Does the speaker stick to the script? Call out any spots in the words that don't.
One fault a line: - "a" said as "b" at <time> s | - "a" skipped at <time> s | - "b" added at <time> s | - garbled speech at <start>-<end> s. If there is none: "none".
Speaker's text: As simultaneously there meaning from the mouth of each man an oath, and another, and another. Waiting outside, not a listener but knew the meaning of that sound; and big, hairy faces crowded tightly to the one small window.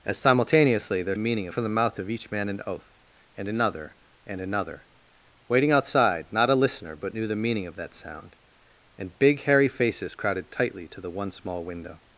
none